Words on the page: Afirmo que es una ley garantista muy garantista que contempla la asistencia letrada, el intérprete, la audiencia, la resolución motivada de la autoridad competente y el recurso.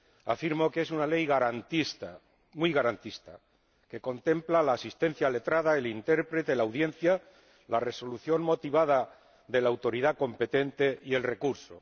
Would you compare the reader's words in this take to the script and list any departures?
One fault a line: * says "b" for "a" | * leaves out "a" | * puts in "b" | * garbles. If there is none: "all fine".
all fine